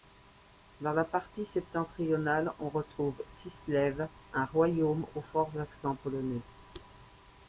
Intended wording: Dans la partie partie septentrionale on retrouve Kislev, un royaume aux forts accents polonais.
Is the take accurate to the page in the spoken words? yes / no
no